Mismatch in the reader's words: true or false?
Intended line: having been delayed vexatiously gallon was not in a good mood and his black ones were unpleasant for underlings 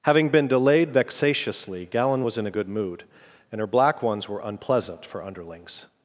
true